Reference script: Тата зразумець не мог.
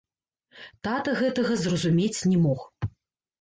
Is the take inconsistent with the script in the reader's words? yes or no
yes